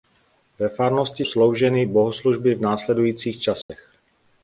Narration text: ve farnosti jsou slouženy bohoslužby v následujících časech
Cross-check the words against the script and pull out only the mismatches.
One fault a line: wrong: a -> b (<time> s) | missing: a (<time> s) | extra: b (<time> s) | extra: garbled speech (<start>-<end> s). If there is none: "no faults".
missing: jsou (1.2 s)